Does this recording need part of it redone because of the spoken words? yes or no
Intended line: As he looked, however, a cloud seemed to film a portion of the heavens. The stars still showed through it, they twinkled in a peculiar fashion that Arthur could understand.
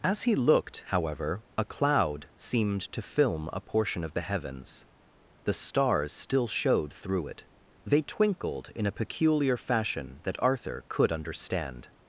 no